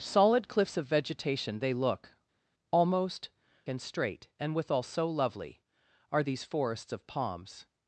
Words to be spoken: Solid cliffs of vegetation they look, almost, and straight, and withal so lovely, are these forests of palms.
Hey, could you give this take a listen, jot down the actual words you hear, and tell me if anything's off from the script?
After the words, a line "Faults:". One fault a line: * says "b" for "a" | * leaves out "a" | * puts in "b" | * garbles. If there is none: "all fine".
Solid cliffs of vegetation they look, almost, and straight, and withal so lovely, are these forests of palms.
Faults:
all fine